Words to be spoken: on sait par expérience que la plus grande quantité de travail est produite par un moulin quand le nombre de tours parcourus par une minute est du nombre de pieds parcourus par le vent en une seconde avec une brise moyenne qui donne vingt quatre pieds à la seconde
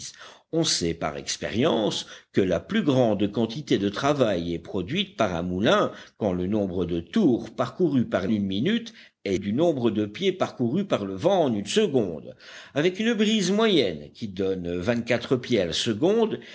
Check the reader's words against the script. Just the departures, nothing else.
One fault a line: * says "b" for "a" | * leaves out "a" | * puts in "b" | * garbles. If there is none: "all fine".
all fine